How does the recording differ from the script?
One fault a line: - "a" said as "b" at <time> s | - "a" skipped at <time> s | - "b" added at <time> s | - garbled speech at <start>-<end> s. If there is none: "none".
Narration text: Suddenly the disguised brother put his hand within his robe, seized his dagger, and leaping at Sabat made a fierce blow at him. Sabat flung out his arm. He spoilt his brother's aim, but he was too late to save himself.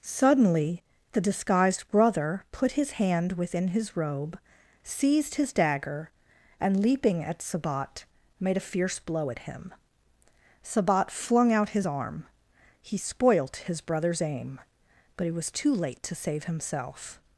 - "he" said as "it" at 15.3 s